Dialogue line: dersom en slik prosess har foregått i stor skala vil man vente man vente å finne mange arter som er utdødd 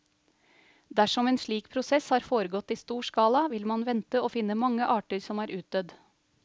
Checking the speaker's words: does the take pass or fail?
fail